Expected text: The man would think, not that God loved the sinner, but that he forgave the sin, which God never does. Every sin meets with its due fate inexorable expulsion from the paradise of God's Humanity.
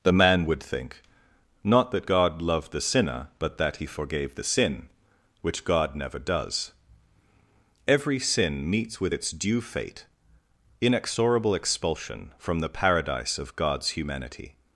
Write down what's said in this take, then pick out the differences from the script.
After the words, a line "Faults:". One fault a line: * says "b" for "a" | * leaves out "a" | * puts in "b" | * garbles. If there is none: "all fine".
The man would think, not that God loved the sinner, but that he forgave the sin, which God never does. Every sin meets with its due fate inexorable expulsion from the paradise of God's Humanity.
Faults:
all fine